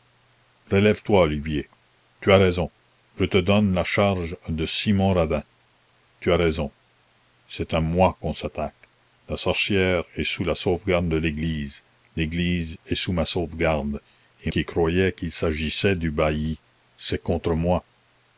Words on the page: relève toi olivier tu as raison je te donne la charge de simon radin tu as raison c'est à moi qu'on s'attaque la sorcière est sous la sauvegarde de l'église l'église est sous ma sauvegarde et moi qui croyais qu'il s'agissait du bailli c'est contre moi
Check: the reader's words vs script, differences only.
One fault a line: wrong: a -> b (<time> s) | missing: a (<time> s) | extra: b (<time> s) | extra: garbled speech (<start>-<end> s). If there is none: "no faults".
missing: moi (14.5 s)